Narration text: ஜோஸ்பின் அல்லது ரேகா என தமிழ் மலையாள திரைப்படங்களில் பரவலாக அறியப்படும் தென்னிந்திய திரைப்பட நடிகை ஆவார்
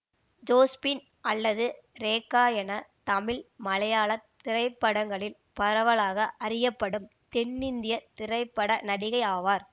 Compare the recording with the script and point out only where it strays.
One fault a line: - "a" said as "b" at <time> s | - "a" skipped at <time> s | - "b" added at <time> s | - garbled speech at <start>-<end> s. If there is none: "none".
none